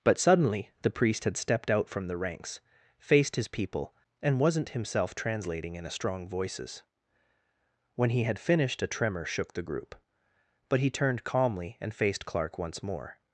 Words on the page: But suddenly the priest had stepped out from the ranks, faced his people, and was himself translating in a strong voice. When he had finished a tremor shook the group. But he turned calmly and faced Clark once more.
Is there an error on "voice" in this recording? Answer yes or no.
yes